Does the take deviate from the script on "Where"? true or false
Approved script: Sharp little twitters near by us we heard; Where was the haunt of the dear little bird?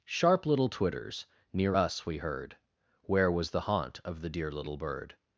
false